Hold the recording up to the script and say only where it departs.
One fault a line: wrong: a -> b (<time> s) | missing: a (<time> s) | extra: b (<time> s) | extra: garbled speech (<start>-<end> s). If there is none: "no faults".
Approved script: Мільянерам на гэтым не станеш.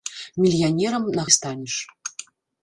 missing: гэтым (1.3 s)